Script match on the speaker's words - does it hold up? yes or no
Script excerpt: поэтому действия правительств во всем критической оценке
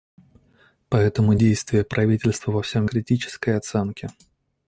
yes